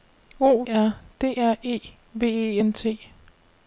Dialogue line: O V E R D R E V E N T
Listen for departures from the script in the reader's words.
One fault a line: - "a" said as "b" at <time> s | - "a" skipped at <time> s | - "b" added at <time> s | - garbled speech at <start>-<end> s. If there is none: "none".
- "V E" skipped at 0.6 s